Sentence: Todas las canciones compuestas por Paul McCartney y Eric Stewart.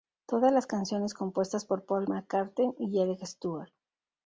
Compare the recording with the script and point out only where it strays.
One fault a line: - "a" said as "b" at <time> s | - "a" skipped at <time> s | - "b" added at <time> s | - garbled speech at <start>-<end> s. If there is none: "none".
none